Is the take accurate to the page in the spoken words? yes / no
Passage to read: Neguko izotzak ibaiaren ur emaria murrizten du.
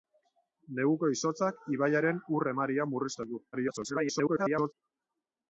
no